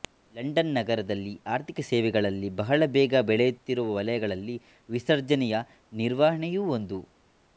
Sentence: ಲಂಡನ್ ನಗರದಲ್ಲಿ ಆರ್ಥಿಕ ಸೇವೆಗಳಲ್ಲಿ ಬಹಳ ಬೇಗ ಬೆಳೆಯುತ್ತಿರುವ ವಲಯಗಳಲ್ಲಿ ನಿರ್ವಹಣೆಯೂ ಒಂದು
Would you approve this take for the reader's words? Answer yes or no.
no